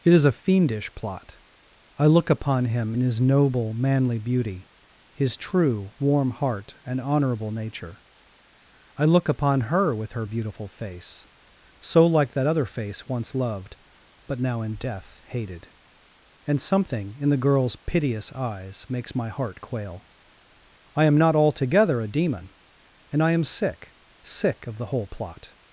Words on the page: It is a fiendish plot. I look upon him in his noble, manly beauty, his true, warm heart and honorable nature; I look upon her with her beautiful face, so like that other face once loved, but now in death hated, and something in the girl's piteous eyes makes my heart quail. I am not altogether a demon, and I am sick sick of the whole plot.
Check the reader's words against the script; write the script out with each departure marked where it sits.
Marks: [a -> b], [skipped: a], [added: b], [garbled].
It is a fiendish plot. I look upon him in his noble, manly beauty, his true, warm heart and honorable nature; I look upon her with her beautiful face, so like that other face once loved, but now in death hated, and something in the girl's piteous eyes makes my heart quail. I am not altogether a demon, and I am sick sick of the whole plot.